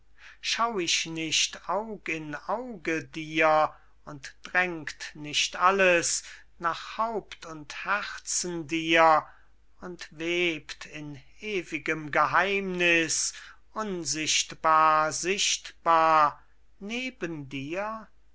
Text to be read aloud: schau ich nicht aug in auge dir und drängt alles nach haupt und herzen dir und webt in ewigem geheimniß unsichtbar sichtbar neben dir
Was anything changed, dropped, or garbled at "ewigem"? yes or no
no